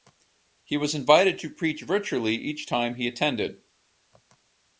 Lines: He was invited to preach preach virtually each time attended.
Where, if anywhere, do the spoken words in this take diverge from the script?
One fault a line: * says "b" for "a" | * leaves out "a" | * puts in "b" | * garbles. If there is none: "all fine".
* leaves out "preach"
* puts in "he"